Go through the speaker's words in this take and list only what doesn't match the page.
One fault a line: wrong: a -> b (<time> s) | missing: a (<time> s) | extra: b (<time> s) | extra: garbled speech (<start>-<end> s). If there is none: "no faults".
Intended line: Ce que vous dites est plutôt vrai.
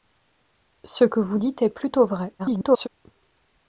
extra: garbled speech (2.4-2.9 s)